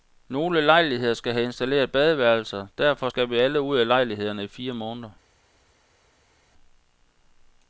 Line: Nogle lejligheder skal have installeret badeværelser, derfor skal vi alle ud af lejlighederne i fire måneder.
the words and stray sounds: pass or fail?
pass